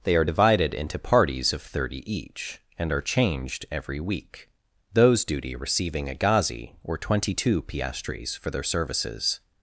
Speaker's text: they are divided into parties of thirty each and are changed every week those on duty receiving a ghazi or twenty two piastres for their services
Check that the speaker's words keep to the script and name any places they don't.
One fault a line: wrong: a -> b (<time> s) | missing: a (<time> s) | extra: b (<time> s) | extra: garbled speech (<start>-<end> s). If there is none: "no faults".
missing: on (5.2 s)